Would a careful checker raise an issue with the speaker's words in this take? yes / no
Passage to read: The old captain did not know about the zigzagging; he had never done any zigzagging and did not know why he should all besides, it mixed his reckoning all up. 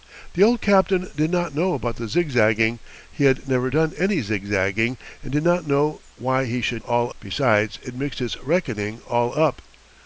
no